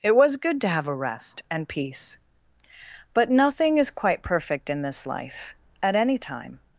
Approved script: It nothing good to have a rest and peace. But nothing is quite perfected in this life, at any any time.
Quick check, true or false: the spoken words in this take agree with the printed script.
false